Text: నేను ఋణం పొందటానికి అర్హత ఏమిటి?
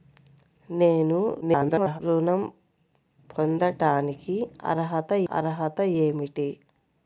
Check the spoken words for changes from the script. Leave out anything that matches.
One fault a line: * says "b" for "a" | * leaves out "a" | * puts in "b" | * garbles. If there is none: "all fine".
* garbles
* puts in "అర్హత"